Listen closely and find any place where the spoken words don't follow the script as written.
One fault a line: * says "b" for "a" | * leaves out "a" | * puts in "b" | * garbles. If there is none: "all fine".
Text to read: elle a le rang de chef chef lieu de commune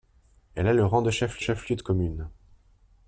all fine